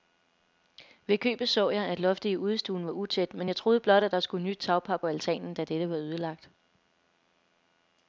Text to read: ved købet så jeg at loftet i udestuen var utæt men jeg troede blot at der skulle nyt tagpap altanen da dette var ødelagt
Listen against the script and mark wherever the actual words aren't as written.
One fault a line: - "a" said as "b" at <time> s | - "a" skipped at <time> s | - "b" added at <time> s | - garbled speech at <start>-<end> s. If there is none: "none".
none